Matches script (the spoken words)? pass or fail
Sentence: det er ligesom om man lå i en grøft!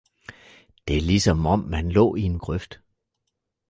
pass